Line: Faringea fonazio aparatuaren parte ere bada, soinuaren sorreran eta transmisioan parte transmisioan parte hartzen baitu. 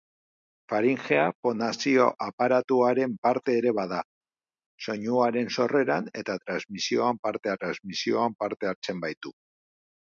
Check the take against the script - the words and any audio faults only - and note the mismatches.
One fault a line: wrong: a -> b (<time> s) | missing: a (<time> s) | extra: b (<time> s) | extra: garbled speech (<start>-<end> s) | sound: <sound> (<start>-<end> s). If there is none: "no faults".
no faults